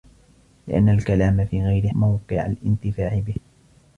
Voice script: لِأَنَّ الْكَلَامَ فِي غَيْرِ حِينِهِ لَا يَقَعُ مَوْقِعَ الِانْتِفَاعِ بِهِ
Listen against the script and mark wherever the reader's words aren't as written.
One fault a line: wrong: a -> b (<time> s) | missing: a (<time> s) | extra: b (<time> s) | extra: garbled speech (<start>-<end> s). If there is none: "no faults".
missing: حِينِهِ لَا يَقَعُ (1.9 s)